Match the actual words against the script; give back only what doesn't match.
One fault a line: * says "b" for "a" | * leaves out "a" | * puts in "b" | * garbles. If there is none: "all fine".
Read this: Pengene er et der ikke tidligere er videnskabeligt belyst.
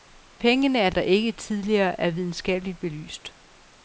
all fine